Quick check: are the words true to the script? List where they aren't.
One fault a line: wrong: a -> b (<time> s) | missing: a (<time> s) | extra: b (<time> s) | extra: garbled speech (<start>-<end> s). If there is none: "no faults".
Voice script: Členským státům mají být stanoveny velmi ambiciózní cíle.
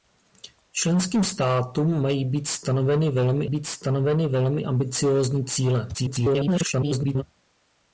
extra: být stanoveny velmi (3.4 s)
extra: garbled speech (5.9-7.2 s)